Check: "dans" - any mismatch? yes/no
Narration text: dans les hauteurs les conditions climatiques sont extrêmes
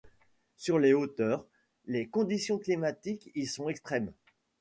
yes